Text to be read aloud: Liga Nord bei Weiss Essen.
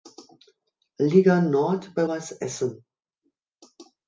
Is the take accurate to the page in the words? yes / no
yes